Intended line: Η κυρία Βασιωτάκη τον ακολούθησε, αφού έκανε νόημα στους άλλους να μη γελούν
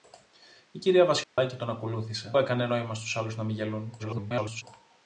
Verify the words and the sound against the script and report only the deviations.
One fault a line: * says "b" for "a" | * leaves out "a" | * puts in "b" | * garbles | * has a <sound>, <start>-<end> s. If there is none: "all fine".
* has a dropout, 1.2-1.4 s
* leaves out "αφού"
* garbles